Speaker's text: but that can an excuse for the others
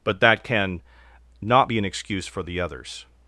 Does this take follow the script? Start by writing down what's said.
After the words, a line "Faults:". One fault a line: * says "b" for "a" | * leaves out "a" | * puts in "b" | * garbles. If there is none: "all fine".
but that can not be an excuse for the others
Faults:
* puts in "not be"